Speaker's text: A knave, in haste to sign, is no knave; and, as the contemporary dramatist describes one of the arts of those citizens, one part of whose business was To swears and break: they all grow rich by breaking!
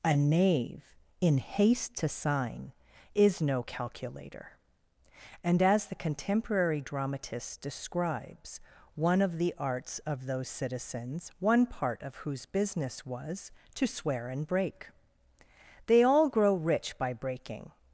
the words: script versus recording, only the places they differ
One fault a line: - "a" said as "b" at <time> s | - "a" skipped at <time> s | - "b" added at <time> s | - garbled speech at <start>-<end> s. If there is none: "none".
- "knave" said as "calculator" at 3.6 s
- "swears" said as "swear" at 13.9 s